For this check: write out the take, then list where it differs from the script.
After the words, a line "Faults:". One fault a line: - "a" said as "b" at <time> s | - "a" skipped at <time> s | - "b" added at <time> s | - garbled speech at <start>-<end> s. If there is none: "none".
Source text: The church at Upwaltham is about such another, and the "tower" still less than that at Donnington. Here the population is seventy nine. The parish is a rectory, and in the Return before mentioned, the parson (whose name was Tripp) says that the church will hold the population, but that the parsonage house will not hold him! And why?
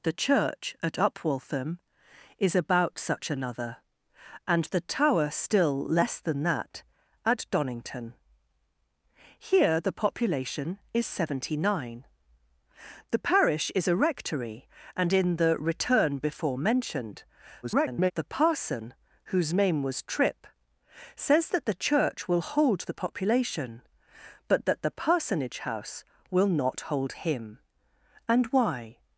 The church at Upwaltham is about such another, and the "tower" still less than that at Donnington. Here the population is seventy nine. The parish is a rectory, and in the Return before mentioned, [garbled] the parson (whose name was Tripp) says that the church will hold the population, but that the parsonage house will not hold him! And why?
Faults:
- garbled speech at 17.6-18.1 s